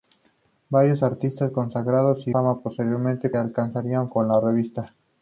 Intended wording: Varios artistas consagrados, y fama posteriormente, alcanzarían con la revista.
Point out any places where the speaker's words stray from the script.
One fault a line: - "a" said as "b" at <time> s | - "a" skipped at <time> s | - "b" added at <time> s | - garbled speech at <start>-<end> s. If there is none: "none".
none